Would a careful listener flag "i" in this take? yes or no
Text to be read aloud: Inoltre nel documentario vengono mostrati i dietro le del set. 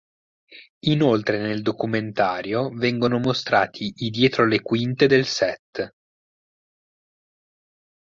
no